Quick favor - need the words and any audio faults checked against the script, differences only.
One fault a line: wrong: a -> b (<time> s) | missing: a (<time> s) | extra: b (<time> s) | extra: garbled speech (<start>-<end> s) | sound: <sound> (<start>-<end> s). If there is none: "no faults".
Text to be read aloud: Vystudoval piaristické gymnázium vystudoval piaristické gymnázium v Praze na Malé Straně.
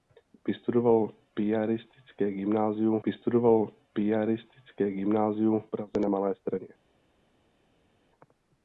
no faults